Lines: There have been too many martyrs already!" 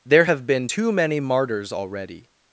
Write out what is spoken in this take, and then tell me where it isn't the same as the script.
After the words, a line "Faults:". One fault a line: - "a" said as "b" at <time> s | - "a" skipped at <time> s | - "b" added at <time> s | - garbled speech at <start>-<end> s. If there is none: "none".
There have been too many martyrs already!"
Faults:
none